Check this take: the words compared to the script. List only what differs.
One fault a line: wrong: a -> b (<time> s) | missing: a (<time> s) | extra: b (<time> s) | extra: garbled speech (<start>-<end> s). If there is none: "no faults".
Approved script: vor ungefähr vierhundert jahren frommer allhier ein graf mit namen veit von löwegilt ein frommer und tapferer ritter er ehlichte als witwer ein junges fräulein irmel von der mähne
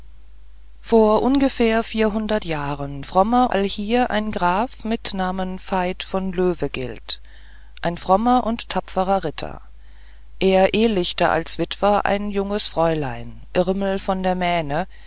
no faults